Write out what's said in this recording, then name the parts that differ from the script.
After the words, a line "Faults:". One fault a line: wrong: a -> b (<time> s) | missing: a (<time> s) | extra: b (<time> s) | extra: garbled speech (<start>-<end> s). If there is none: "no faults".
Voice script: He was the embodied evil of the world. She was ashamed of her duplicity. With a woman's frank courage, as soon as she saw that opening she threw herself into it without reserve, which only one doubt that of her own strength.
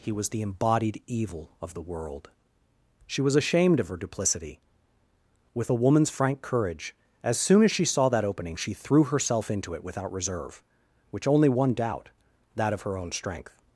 He was the embodied evil of the world. She was ashamed of her duplicity. With a woman's frank courage, as soon as she saw that opening she threw herself into it without reserve, which only one doubt that of her own strength.
Faults:
no faults